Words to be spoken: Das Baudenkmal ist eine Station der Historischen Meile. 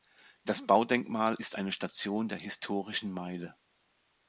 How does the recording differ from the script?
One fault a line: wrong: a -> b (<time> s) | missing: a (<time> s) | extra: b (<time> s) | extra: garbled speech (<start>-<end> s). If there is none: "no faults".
no faults